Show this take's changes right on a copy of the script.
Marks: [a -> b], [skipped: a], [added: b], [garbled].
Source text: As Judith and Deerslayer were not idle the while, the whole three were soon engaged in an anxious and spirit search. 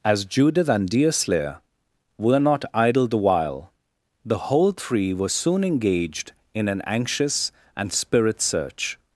As Judith and Deerslayer were not idle the while, the whole three were soon engaged in an anxious and spirit search.